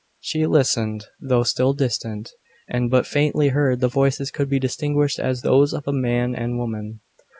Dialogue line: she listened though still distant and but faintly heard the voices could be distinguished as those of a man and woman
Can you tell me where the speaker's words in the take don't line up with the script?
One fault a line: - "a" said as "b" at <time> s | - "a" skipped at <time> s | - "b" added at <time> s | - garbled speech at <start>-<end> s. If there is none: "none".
none